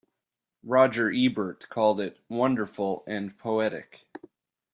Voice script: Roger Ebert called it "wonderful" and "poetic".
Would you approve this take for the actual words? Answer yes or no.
yes